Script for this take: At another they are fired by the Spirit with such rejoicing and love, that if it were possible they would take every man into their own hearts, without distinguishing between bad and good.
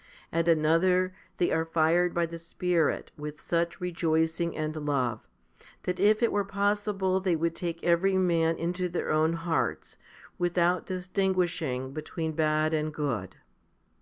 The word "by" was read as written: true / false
true